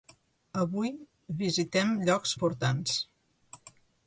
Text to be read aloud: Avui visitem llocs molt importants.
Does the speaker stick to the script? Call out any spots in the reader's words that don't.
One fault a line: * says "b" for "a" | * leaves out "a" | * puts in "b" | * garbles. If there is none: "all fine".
* leaves out "molt"